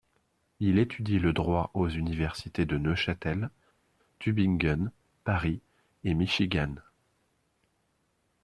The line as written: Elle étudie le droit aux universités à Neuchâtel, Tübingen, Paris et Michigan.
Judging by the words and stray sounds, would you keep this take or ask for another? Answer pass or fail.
fail